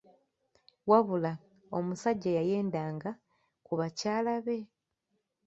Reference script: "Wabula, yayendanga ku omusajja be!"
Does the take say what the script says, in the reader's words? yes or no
no